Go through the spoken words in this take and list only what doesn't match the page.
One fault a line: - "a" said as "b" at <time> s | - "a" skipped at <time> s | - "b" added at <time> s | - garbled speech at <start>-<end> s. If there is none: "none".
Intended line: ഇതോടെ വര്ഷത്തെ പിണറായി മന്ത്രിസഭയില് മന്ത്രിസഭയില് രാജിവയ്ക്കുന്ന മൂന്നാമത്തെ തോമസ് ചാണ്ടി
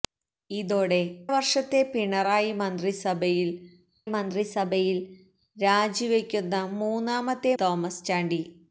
none